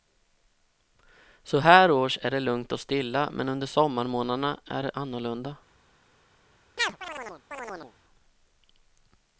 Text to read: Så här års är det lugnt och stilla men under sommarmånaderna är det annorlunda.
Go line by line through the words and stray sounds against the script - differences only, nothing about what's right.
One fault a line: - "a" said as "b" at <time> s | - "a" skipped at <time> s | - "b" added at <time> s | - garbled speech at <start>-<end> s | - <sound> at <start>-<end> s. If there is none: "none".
- chirp at 6.8-7.9 s